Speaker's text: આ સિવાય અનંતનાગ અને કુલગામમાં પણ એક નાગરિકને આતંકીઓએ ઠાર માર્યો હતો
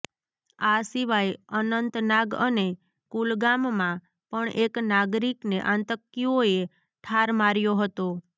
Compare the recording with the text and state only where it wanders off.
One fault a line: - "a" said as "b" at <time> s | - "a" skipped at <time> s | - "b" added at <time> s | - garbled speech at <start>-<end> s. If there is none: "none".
none